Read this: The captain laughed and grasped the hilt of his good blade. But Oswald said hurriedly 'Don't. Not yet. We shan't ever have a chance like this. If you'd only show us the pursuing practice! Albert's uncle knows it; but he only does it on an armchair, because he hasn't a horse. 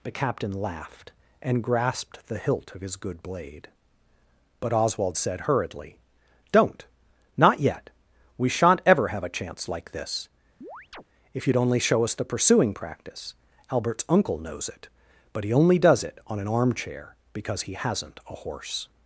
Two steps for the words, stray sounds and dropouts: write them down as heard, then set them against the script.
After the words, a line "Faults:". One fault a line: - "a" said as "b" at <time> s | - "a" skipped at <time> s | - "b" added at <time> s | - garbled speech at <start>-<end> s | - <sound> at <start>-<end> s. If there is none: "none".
The captain laughed and grasped the hilt of his good blade. But Oswald said hurriedly 'Don't. Not yet. We shan't ever have a chance like this. If you'd only show us the pursuing practice! Albert's uncle knows it; but he only does it on an armchair, because he hasn't a horse.
Faults:
- chirp at 10.6-11.0 s